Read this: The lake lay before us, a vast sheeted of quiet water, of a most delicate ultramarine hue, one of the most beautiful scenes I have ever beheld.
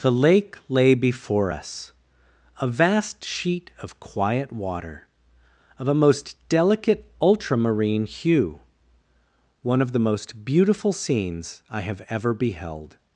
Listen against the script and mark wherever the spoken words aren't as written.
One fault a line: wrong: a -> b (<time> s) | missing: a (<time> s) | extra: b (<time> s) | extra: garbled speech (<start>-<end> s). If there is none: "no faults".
wrong: sheeted -> sheet (3.2 s)